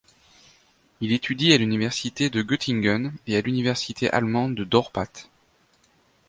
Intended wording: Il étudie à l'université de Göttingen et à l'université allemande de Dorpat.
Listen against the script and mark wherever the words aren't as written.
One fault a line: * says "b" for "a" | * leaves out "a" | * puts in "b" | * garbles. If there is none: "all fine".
all fine